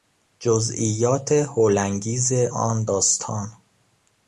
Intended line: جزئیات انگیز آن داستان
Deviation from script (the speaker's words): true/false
true